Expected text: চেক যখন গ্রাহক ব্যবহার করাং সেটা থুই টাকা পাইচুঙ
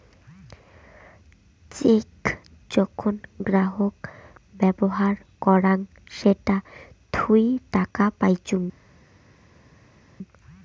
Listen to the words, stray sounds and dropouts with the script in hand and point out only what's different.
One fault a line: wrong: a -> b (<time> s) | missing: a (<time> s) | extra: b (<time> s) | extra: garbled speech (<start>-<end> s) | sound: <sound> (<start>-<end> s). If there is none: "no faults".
no faults